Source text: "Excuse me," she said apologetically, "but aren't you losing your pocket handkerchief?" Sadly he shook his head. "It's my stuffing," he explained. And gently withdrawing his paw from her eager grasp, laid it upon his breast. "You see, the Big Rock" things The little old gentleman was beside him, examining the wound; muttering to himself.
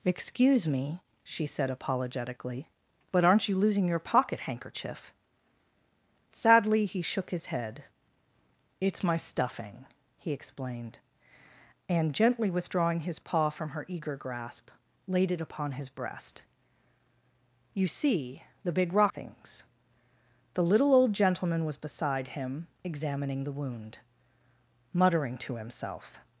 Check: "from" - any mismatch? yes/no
no